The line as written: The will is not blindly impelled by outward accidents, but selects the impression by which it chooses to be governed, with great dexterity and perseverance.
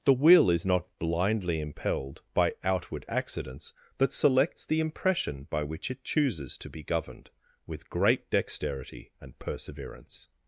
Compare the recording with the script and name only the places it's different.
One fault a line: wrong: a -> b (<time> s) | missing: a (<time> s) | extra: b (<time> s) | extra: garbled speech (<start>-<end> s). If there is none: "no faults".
no faults